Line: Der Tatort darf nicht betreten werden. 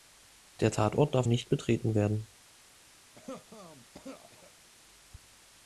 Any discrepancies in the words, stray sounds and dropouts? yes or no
yes